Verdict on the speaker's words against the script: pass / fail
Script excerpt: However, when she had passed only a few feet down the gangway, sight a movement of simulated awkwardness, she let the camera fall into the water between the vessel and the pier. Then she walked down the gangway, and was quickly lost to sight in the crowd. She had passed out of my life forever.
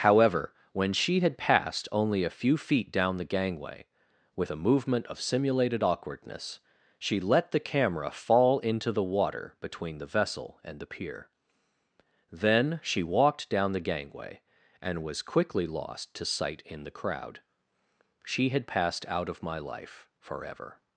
fail